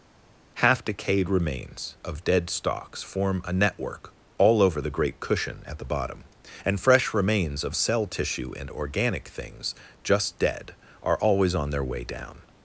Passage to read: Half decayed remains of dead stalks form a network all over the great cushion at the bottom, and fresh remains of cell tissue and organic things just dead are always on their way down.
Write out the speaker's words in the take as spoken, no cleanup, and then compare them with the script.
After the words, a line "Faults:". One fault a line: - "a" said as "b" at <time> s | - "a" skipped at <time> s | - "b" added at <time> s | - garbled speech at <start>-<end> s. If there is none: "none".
Half decayed remains of dead stalks form a network all over the great cushion at the bottom, and fresh remains of cell tissue and organic things just dead are always on their way down.
Faults:
none